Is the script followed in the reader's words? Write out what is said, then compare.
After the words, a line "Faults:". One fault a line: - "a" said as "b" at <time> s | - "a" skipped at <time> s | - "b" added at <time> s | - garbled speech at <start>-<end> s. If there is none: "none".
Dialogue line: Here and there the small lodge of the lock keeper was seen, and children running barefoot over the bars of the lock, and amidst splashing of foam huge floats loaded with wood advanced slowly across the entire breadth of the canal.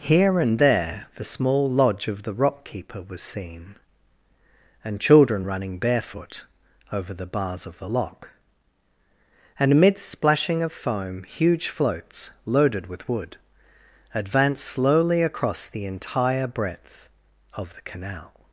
Here and there the small lodge of the rock keeper was seen, and children running barefoot over the bars of the lock, and amidst splashing of foam huge floats loaded with wood advanced slowly across the entire breadth of the canal.
Faults:
- "lock" said as "rock" at 2.3 s